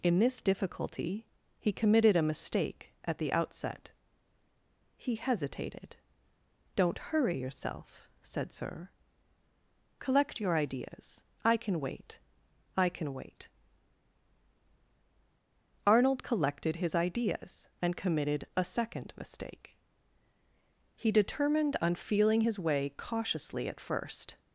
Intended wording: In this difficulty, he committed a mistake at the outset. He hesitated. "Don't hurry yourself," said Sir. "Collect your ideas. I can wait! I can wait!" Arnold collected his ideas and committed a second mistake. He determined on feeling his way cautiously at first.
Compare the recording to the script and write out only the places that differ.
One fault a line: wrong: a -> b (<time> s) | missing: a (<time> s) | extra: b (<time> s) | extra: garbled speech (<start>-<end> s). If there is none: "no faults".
no faults